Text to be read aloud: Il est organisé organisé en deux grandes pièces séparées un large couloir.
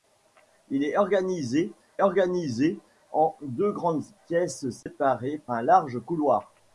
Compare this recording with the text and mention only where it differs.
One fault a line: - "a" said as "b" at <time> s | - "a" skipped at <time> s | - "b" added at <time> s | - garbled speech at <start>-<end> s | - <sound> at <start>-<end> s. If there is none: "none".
- dropout at 4.8-4.9 s